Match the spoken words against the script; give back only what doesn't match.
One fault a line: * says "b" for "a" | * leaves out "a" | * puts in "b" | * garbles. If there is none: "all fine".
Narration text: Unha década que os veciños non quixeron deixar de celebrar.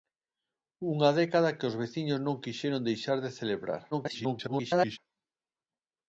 * garbles